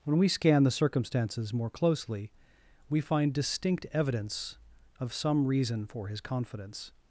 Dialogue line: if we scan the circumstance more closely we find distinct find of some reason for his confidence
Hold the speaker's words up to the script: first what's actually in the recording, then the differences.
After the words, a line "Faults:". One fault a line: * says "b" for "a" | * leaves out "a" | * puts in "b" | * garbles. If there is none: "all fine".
when we scan the circumstances more closely we find distinct evidence of some reason for his confidence
Faults:
* says "when" for "if"
* says "circumstances" for "circumstance"
* says "evidence" for "find"